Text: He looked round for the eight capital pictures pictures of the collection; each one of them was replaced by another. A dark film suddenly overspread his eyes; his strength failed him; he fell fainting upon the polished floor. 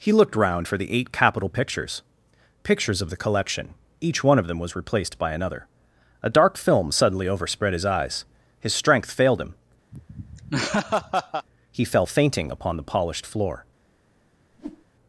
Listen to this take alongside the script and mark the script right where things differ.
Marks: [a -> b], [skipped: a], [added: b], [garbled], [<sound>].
He looked round for the eight capital pictures pictures of the collection; each one of them was replaced by another. A dark film suddenly overspread his eyes; his strength failed him; [laugh] he fell fainting upon the polished floor. [whoosh]